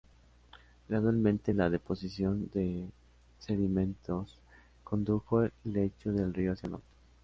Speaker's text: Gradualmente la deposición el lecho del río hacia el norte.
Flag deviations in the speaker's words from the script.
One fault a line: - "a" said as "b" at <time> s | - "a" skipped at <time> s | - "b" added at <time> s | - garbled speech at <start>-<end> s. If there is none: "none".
- "de sedimentos condujo" added at 2.5 s